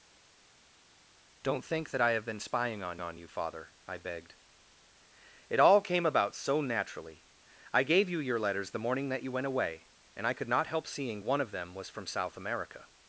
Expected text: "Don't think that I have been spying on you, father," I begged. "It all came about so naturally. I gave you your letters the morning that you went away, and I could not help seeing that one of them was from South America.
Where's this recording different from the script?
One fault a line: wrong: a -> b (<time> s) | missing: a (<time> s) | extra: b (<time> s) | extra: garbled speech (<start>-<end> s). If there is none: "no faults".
extra: on (3.0 s)
missing: that (11.2 s)